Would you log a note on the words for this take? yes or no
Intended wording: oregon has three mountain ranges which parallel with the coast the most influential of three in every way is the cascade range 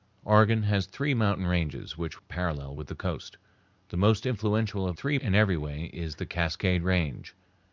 no